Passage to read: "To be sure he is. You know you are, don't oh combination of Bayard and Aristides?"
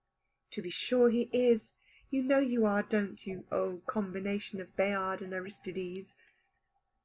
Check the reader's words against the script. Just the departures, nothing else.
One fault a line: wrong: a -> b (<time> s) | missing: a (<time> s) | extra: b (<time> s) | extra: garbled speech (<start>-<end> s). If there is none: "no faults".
extra: you (3.3 s)